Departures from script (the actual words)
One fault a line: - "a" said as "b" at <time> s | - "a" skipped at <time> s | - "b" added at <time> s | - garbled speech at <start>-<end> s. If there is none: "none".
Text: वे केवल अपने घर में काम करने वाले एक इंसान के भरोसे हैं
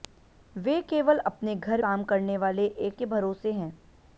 - "में" skipped at 1.8 s
- "इंसान" skipped at 3.0 s